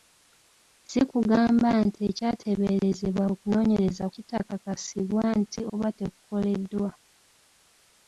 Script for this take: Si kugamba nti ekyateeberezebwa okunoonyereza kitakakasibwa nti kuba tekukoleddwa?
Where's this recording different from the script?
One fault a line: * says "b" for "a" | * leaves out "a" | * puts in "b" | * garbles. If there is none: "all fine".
all fine